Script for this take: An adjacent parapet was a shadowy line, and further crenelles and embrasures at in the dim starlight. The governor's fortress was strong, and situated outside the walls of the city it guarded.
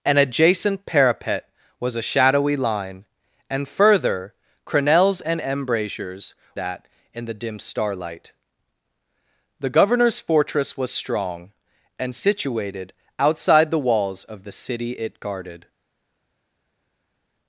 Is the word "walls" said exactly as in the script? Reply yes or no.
yes